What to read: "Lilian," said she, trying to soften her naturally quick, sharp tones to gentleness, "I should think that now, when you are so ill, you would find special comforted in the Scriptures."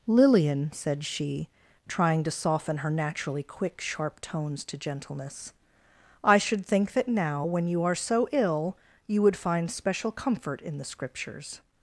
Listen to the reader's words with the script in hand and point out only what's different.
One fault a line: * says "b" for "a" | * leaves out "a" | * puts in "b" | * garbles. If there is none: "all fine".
* says "comfort" for "comforted"